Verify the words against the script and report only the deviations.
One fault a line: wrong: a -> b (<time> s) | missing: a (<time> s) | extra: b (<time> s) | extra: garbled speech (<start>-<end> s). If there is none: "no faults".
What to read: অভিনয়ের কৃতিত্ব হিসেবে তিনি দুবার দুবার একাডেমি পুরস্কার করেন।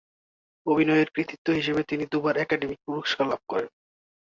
missing: দুবার (2.4 s)
extra: লাভ (3.3 s)